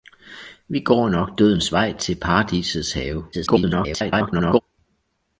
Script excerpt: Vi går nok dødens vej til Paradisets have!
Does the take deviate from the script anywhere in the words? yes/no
yes